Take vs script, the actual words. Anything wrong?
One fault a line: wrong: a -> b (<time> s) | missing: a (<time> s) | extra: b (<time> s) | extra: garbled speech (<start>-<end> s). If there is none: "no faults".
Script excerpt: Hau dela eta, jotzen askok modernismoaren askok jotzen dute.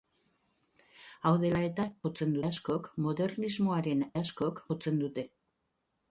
no faults